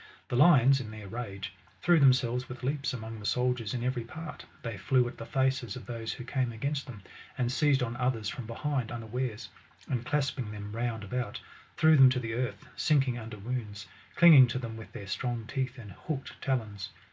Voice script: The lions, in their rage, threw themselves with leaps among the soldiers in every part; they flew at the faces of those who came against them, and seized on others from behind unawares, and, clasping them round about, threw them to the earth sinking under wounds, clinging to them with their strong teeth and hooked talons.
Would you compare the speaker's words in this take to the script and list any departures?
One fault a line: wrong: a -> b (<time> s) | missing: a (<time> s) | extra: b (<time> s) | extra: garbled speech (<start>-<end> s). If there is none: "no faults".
no faults